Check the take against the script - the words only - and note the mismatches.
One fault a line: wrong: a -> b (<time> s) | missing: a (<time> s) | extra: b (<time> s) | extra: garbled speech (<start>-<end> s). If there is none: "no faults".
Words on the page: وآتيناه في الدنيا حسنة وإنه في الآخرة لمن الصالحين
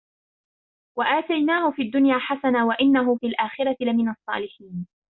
no faults